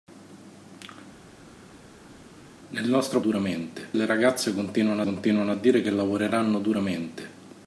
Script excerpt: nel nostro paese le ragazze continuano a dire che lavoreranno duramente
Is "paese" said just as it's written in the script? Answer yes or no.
no